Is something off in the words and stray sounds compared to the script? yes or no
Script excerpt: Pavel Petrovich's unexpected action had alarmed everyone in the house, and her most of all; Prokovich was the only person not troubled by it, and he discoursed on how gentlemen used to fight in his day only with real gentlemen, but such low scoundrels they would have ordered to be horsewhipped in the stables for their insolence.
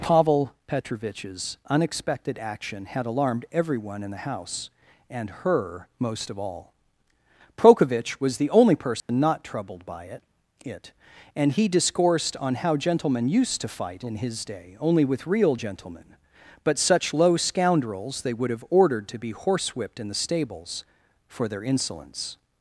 yes